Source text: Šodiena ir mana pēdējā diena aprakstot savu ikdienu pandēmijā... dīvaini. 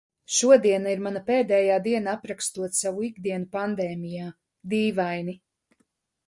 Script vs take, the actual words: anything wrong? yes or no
no